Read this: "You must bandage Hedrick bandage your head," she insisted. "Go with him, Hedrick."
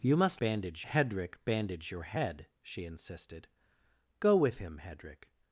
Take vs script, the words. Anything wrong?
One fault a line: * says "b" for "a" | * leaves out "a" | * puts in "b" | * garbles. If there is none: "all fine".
all fine